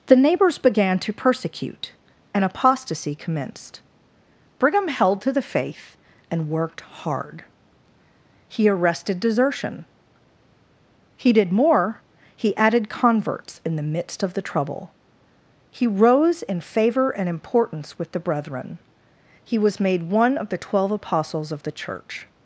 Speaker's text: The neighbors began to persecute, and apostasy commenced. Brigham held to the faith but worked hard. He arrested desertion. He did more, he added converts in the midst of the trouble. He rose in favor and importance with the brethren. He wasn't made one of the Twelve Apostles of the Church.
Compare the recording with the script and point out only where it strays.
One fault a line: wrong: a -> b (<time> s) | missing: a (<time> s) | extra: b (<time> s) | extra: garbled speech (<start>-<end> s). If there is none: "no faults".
wrong: but -> and (6.3 s)
wrong: wasn't -> was (19.6 s)